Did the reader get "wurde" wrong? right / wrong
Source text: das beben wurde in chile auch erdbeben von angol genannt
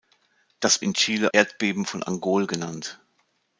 wrong